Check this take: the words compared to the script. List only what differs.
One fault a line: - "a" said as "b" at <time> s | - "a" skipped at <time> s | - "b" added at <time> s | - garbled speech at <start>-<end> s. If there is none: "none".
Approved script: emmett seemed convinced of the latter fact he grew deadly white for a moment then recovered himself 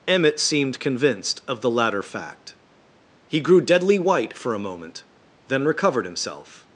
none